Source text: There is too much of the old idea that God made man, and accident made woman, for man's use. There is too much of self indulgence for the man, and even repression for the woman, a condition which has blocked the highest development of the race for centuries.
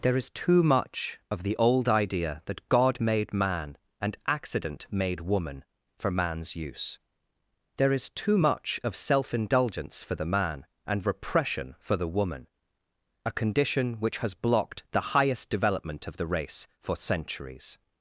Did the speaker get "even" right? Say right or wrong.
wrong